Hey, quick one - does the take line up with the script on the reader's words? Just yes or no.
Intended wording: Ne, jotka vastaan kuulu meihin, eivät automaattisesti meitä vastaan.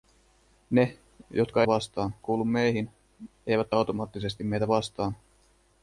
yes